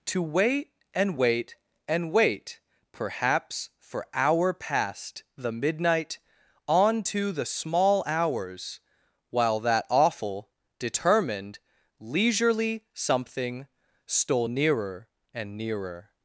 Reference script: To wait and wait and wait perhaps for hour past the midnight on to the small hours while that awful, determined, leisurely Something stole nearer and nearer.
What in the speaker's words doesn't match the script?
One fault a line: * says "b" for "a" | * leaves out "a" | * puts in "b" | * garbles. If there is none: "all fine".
all fine